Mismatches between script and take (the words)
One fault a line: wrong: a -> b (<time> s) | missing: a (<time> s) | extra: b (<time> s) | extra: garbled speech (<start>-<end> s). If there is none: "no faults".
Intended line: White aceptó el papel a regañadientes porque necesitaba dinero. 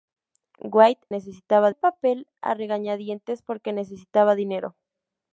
wrong: aceptó -> necesitaba (1.1 s)